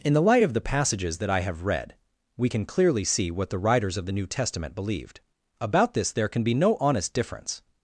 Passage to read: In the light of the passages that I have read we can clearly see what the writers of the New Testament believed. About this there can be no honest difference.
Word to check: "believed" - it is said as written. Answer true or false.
true